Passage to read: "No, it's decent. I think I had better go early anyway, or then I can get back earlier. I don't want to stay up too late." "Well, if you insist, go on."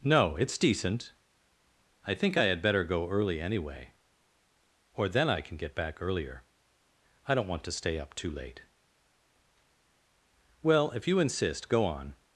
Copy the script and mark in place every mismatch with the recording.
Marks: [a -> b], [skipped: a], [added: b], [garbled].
"No, it's decent. I think I had better go early anyway, or then I can get back earlier. I don't want to stay up too late." "Well, if you insist, go on."